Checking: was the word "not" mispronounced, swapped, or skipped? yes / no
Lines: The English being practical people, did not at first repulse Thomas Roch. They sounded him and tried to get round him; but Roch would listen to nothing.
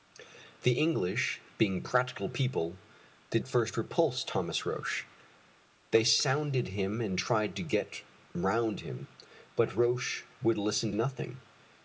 yes